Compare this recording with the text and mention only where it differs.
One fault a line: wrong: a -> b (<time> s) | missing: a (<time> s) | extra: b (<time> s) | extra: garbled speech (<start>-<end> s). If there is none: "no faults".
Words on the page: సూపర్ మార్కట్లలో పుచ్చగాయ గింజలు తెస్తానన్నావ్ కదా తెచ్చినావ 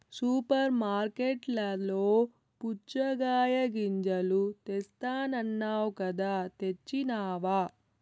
no faults